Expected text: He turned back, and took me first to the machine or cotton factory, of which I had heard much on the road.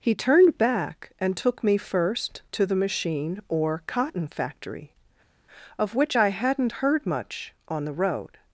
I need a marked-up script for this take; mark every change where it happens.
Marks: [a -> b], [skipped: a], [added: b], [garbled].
He turned back, and took me first to the machine or cotton factory, of which I [had -> hadn't] heard much on the road.